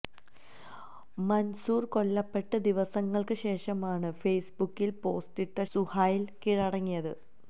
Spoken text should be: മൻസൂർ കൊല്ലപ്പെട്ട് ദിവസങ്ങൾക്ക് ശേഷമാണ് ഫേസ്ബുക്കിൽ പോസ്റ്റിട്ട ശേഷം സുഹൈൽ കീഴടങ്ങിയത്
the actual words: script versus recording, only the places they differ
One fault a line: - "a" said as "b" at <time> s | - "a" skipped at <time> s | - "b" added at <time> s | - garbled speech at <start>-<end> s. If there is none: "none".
- "ശേഷം" skipped at 5.6 s